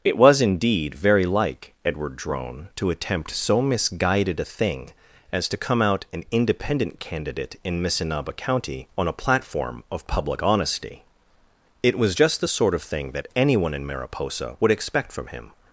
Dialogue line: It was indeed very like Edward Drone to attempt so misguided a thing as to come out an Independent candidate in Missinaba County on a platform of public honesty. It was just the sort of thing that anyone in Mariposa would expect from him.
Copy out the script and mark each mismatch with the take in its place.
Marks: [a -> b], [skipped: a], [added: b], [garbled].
It was indeed very like Edward Drone to attempt so misguided a thing as to come out an Independent candidate in Missinaba County on a platform of public honesty. It was just the sort of thing that anyone in Mariposa would expect from him.